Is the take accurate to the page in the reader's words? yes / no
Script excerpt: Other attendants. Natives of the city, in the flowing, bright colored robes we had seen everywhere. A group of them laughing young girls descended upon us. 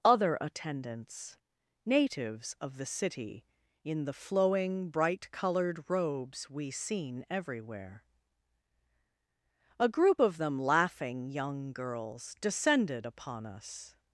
no